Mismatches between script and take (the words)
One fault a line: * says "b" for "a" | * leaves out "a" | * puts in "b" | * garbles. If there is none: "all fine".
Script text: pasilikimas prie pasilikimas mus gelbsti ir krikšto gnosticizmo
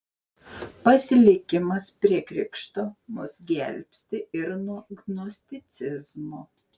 * says "krikšto" for "pasilikimas"
* says "nuo" for "krikšto"